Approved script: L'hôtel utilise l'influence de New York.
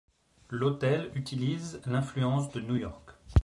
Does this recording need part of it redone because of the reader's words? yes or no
no